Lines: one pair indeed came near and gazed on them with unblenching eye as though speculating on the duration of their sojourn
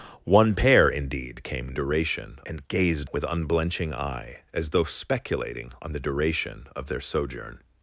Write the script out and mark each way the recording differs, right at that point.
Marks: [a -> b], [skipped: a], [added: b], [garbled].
one pair indeed came [near -> duration] and gazed [skipped: on them] with unblenching eye as though speculating on the duration of their sojourn